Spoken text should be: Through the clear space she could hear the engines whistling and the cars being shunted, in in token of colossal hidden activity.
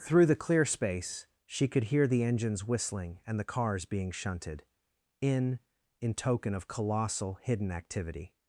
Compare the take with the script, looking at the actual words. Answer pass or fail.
pass